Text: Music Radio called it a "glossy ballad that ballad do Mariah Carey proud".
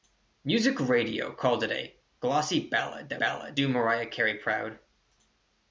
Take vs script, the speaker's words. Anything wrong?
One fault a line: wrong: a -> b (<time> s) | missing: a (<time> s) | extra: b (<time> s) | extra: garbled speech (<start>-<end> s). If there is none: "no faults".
no faults